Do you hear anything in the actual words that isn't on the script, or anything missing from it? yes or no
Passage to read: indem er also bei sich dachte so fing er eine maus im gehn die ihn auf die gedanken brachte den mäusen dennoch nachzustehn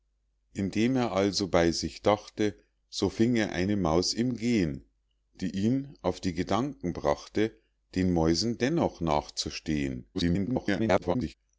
yes